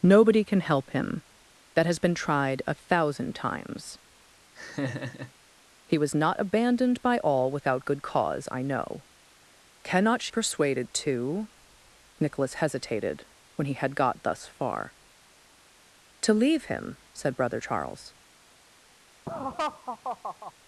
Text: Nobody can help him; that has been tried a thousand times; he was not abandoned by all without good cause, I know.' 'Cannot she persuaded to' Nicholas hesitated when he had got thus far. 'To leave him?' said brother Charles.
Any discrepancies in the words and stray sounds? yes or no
yes